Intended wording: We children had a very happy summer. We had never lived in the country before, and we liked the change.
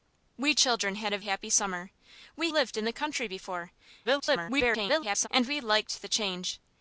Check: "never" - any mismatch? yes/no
yes